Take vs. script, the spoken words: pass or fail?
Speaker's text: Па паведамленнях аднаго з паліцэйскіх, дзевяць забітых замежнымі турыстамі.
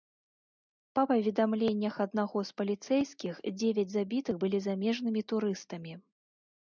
fail